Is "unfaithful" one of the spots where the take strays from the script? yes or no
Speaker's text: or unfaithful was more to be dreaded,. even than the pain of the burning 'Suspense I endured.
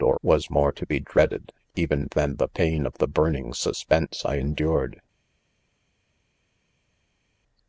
yes